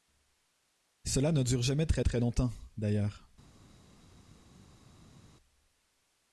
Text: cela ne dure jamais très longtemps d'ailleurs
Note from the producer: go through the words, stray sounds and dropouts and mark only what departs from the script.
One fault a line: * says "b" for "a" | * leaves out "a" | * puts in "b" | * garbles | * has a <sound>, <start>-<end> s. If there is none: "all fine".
* puts in "très"